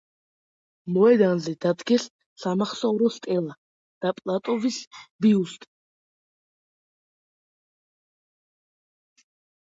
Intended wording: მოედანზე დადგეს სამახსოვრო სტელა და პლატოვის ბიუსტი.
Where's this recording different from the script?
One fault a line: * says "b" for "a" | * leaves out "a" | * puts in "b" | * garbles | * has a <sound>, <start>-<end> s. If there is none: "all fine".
all fine